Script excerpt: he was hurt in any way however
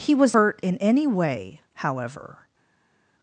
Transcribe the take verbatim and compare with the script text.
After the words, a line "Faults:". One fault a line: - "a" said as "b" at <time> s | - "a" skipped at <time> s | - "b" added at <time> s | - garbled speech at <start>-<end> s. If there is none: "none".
he was hurt in any way however
Faults:
none